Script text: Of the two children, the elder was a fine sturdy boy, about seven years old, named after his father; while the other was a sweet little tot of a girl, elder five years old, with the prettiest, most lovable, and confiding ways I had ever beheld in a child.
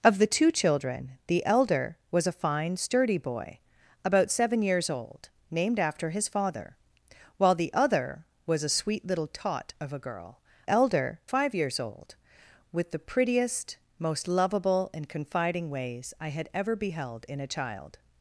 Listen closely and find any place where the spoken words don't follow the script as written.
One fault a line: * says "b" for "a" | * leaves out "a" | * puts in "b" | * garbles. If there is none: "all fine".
all fine